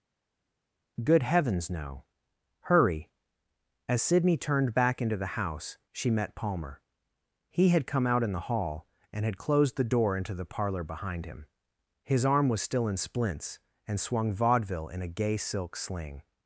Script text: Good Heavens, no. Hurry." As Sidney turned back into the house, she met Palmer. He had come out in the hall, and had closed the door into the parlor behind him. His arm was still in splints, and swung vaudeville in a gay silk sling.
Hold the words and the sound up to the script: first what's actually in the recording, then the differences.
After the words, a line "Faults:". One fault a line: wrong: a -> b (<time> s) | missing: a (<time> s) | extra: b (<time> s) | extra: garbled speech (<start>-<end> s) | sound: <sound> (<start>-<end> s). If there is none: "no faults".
Good Heavens, no. Hurry." As Sidney turned back into the house, she met Palmer. He had come out in the hall, and had closed the door into the parlor behind him. His arm was still in splints, and swung vaudeville in a gay silk sling.
Faults:
no faults